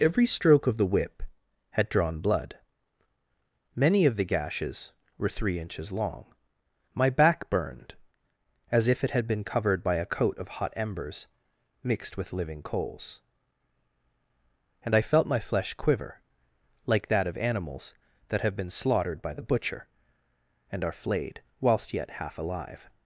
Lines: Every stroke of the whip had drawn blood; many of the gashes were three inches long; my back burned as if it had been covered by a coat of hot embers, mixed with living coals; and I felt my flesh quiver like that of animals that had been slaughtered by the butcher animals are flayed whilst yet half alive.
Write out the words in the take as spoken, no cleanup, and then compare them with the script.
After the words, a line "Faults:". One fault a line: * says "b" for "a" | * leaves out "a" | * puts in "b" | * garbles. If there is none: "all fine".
Every stroke of the whip had drawn blood; many of the gashes were three inches long; my back burned as if it had been covered by a coat of hot embers, mixed with living coals; and I felt my flesh quiver like that of animals that have been slaughtered by the butcher and are flayed whilst yet half alive.
Faults:
* says "have" for "had"
* says "and" for "animals"